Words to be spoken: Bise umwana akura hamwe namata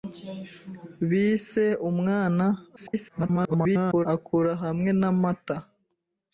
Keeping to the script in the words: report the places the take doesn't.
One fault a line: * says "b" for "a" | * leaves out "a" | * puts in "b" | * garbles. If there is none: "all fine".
* garbles